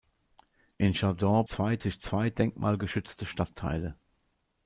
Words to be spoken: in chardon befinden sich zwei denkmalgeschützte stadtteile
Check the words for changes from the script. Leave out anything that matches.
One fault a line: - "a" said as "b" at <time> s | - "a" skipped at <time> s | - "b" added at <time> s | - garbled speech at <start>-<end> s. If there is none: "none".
- "befinden" said as "zwei" at 1.5 s